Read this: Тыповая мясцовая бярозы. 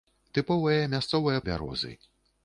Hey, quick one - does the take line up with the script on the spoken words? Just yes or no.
yes